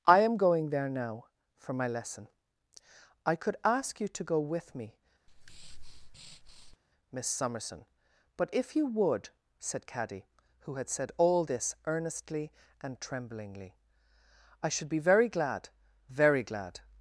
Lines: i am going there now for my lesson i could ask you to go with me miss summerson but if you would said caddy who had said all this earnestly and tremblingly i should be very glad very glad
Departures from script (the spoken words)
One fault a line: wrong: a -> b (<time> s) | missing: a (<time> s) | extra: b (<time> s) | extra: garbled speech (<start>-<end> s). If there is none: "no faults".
no faults